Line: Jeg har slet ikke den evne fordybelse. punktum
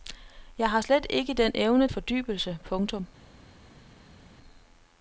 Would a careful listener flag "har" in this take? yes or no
no